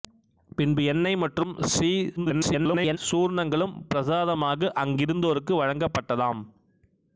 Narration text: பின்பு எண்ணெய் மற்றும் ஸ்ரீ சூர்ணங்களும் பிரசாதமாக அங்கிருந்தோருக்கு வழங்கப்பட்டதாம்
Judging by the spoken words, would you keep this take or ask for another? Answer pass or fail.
fail